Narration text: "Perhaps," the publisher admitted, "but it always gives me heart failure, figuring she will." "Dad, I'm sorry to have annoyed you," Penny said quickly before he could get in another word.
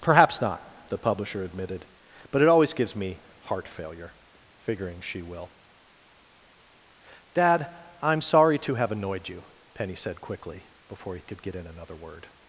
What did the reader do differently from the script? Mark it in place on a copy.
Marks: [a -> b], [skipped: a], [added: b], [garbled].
"Perhaps," [added: not] the publisher admitted, "but it always gives me heart failure, figuring she will." "Dad, I'm sorry to have annoyed you," Penny said quickly before he could get in another word.